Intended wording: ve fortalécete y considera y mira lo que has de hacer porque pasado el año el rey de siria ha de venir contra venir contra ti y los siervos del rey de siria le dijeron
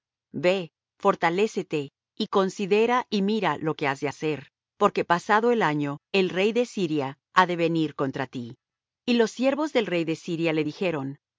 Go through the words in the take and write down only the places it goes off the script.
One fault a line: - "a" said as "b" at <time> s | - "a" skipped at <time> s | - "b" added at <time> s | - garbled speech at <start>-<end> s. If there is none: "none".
- "venir contra" skipped at 8.3 s